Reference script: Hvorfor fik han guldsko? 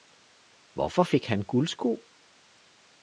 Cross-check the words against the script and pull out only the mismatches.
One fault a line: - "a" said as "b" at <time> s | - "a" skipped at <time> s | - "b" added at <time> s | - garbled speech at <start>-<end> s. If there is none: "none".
none